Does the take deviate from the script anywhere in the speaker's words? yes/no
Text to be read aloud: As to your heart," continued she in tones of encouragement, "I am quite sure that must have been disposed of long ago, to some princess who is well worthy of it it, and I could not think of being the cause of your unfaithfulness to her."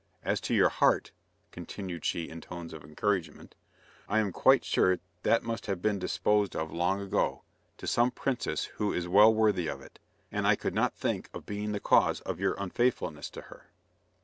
yes